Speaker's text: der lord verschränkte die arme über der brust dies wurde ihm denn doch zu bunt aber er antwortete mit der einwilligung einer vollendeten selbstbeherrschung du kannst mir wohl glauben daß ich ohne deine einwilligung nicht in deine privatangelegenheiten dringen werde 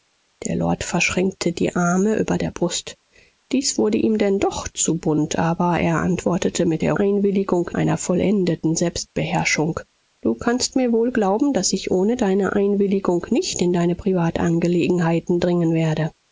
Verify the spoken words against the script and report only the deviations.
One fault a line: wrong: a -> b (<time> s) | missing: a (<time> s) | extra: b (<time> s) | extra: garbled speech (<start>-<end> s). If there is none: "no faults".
no faults